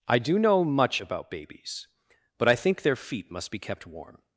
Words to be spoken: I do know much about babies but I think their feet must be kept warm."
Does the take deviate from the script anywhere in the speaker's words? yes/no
no